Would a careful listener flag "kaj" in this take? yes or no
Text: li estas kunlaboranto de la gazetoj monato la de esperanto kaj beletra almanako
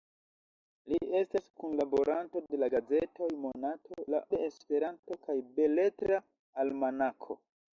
no